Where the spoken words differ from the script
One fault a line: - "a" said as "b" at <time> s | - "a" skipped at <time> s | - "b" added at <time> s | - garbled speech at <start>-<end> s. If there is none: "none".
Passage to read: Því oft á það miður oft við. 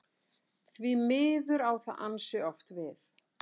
- "oft" said as "miður" at 1.1 s
- "miður" said as "ansi" at 2.1 s